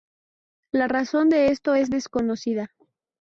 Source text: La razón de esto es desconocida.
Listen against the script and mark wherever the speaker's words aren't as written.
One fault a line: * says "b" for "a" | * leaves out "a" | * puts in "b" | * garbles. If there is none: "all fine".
all fine